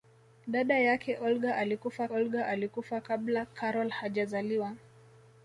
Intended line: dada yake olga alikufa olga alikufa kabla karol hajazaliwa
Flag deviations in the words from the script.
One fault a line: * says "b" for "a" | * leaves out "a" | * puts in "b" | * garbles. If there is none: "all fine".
all fine